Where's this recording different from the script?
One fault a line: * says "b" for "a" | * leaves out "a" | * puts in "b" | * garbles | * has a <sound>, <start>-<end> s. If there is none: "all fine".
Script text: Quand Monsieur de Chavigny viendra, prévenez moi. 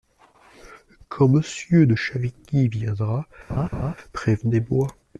* has a laugh, 3.5-4.0 s